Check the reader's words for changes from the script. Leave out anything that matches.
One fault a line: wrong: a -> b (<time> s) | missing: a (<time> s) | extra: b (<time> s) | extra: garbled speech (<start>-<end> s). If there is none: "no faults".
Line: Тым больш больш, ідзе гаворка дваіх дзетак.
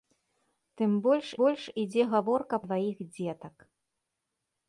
no faults